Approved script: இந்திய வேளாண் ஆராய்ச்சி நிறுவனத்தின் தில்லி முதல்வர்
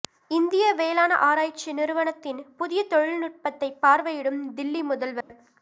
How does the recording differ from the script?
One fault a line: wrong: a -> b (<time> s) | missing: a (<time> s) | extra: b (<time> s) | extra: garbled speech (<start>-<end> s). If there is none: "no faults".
extra: புதிய தொழில்நுட்பத்தை பார்வையிடும் (2.6 s)